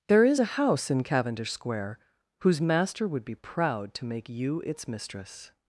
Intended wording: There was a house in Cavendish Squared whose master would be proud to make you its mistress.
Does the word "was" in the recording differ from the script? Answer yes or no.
yes